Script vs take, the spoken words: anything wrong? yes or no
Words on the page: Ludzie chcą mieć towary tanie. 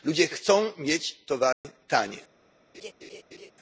no